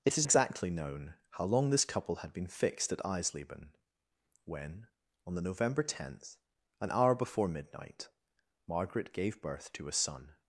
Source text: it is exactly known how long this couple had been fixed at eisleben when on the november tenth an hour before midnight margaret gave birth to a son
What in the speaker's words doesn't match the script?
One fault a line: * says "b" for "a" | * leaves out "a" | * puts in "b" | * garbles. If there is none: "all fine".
all fine